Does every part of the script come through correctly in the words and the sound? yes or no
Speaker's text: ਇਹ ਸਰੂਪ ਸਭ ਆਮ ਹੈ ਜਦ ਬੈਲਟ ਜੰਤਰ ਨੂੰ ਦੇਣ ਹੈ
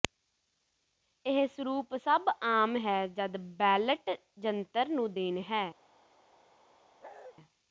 no